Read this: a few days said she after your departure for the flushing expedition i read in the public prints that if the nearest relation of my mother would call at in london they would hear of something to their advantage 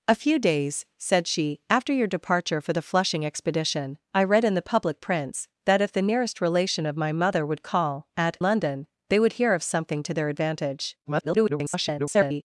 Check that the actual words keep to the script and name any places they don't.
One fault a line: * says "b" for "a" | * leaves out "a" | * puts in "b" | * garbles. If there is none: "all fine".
* leaves out "in"
* garbles